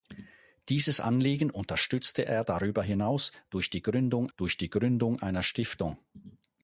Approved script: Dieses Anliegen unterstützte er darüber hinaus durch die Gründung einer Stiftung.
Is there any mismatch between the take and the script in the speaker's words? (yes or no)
yes